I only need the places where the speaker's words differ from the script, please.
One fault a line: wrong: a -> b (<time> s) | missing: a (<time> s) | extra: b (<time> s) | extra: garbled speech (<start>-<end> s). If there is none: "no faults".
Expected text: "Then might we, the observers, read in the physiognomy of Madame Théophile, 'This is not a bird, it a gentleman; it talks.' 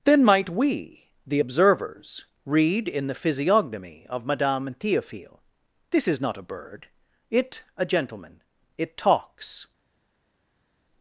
no faults